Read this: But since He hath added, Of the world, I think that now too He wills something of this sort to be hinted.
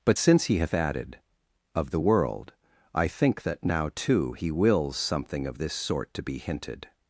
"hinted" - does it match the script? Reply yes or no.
yes